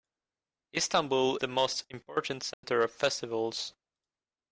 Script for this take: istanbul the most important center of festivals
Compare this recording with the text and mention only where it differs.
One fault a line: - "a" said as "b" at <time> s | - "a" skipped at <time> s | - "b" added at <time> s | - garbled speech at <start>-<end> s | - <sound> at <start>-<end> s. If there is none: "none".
- dropout at 2.5-2.6 s